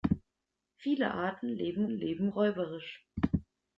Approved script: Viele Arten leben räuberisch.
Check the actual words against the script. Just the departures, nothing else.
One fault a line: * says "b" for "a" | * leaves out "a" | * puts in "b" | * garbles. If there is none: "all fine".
* puts in "leben"